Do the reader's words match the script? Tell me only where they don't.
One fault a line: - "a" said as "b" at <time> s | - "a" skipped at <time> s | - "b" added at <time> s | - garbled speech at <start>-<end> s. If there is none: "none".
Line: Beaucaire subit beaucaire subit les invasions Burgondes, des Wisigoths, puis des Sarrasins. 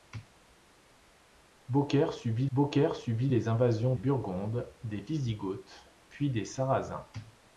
none